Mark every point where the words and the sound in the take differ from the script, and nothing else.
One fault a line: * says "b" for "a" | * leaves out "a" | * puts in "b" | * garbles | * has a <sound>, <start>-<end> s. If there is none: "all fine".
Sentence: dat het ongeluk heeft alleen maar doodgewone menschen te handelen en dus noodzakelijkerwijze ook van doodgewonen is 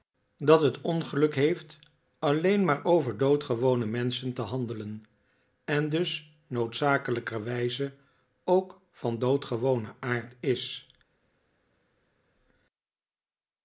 * puts in "over"
* puts in "aard"